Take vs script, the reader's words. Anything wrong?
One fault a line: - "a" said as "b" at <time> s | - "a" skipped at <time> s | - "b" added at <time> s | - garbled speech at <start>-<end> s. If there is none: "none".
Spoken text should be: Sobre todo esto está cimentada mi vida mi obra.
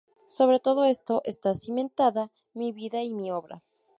- "y" added at 3.0 s